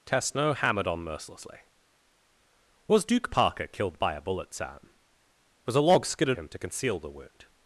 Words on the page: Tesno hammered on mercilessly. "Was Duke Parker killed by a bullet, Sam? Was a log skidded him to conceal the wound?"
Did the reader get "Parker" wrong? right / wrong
right